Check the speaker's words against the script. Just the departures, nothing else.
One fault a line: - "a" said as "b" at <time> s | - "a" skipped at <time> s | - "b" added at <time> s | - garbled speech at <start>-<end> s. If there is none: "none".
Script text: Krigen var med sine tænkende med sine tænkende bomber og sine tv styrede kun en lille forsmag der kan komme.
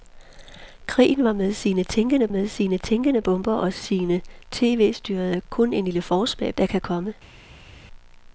none